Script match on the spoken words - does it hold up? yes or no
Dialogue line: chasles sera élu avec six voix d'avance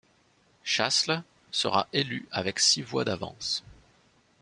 yes